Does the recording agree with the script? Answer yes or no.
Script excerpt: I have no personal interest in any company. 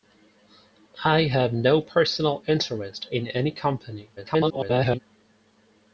no